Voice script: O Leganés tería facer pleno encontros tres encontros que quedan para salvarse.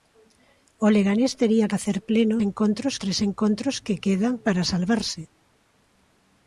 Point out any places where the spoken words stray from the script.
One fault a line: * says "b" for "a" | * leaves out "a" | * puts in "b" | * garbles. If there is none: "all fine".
all fine